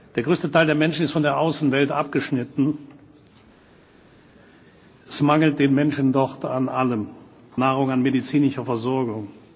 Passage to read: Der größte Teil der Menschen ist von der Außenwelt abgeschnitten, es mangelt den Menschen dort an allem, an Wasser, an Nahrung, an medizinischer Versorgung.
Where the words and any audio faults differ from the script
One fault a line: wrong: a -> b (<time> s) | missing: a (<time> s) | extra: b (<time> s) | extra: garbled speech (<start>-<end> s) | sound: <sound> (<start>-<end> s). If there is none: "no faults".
missing: an Wasser an (7.1 s)